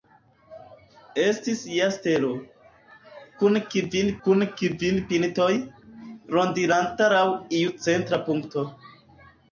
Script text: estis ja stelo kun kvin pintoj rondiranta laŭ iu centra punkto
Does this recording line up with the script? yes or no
no